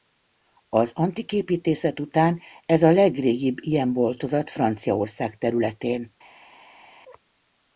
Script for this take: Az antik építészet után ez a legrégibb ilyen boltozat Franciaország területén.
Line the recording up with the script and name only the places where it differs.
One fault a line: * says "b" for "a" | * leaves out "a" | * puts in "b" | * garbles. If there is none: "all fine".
all fine